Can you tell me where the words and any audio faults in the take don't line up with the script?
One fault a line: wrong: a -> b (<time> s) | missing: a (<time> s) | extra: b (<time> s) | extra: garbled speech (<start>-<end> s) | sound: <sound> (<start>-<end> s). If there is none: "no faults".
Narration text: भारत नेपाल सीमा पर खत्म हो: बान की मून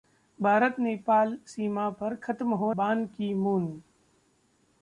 no faults